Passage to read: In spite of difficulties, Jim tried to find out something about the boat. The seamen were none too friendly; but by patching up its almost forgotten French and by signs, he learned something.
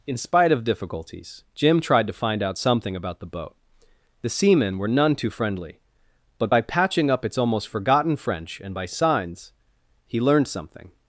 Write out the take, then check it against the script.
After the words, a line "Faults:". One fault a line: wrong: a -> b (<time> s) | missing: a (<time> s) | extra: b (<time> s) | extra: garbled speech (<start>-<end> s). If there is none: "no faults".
In spite of difficulties, Jim tried to find out something about the boat. The seamen were none too friendly; but by patching up its almost forgotten French and by signs, he learned something.
Faults:
no faults